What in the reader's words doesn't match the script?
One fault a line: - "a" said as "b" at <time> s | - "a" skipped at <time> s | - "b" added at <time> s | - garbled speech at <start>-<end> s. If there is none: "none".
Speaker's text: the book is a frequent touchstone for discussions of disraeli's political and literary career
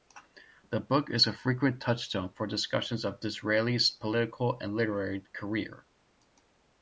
none